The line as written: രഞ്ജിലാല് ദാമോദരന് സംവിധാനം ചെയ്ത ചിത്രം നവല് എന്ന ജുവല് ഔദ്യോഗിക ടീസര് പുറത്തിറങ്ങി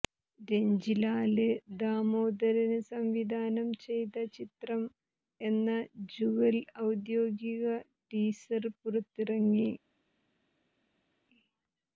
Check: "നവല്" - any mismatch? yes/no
yes